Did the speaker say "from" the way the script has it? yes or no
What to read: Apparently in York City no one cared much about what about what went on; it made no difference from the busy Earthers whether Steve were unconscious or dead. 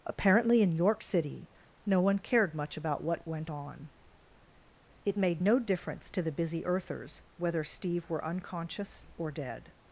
no